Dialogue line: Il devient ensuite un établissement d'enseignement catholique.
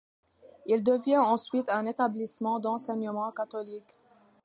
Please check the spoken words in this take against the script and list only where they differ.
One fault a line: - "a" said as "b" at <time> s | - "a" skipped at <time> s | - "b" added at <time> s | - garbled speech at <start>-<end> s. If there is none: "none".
none